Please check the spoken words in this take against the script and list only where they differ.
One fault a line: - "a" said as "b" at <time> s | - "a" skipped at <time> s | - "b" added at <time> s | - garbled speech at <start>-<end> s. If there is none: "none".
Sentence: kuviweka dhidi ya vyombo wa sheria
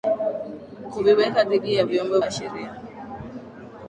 none